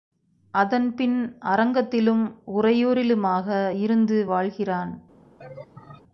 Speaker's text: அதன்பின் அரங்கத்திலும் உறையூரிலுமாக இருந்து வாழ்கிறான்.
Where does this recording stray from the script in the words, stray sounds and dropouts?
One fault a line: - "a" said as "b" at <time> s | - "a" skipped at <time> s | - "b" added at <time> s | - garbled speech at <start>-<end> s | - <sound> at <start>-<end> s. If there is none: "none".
- laugh at 5.4-6.0 s